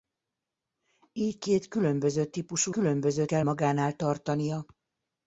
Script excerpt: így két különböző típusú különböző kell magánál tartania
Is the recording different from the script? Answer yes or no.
no